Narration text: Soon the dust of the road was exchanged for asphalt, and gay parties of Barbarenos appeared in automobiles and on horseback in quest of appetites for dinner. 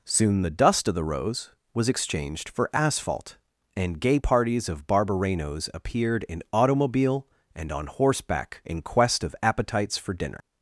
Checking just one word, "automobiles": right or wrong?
wrong